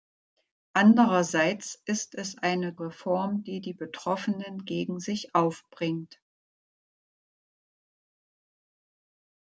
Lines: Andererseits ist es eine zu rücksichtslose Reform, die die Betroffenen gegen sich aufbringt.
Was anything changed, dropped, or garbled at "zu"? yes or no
yes